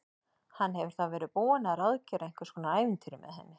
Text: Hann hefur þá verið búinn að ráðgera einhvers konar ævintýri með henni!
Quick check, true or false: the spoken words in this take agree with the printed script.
true